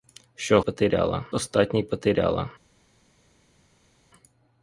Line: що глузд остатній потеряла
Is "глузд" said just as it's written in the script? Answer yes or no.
no